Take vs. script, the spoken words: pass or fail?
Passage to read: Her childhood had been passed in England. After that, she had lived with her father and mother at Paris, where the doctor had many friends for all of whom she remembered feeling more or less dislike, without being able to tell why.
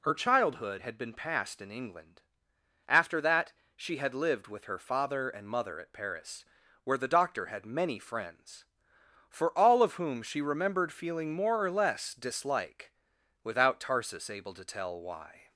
fail